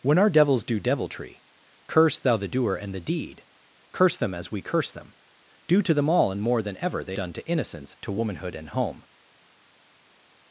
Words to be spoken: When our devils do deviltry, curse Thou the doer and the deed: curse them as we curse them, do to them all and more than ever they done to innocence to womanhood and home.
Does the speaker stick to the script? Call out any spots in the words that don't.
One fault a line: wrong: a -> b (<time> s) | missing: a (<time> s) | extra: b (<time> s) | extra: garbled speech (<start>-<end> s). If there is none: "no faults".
no faults